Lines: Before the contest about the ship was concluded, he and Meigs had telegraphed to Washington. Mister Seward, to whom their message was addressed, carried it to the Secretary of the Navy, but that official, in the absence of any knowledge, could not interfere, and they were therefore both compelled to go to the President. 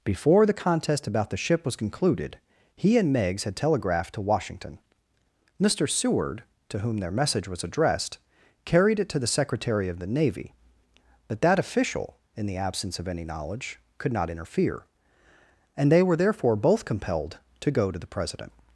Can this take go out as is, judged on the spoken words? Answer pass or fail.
pass